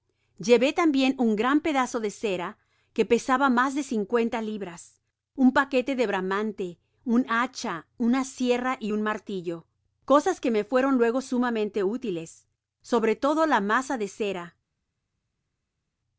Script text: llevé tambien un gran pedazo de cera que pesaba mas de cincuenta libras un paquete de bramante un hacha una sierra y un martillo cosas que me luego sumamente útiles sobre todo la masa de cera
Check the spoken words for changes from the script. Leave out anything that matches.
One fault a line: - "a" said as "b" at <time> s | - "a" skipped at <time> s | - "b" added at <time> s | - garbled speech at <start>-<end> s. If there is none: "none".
- "fueron" added at 10.6 s